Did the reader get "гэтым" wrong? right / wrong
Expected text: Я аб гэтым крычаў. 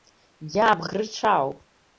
wrong